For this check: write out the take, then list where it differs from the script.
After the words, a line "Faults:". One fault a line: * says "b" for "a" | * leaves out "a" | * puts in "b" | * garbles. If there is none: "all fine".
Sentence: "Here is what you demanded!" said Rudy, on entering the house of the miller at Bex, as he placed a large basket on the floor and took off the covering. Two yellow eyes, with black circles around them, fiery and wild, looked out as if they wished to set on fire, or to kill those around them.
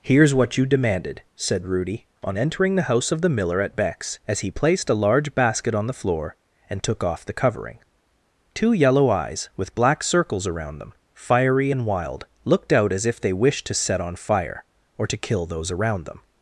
"Here is what you demanded!" said Rudy, on entering the house of the miller at Bex, as he placed a large basket on the floor and took off the covering. Two yellow eyes, with black circles around them, fiery and wild, looked out as if they wished to set on fire, or to kill those around them.
Faults:
all fine